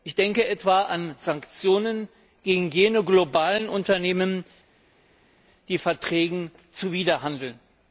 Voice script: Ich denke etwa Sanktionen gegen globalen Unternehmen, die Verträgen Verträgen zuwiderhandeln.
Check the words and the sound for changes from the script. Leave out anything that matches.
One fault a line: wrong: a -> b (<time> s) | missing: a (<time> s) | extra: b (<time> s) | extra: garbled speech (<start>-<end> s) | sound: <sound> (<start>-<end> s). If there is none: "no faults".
extra: an (0.8 s)
extra: jene (2.7 s)
missing: Verträgen (6.5 s)